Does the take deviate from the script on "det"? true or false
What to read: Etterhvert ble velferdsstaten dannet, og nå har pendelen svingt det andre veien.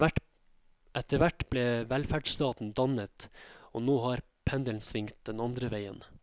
true